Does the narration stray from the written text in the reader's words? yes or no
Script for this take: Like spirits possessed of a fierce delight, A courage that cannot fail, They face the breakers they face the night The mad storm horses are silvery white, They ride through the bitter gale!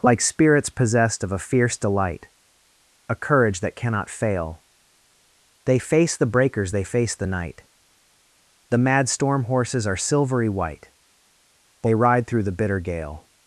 no